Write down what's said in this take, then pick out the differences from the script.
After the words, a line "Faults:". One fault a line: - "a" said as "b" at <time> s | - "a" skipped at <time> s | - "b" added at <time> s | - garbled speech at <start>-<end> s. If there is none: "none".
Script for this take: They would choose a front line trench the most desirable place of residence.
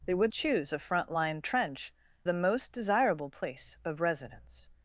They would choose a front line trench the most desirable place of residence.
Faults:
none